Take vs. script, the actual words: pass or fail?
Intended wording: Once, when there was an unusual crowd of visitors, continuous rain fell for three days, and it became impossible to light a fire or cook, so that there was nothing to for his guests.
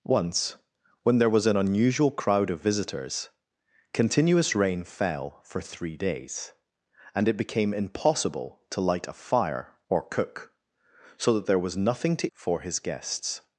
pass